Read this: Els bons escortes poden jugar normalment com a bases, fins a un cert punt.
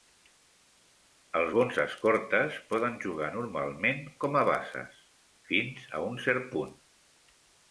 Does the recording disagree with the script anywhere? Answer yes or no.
no